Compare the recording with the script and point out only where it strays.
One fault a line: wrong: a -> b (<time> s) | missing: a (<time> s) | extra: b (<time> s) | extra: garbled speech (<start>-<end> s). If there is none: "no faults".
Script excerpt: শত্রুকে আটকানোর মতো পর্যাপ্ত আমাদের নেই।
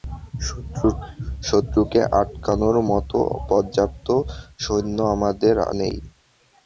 extra: সৈন্য (4.6 s)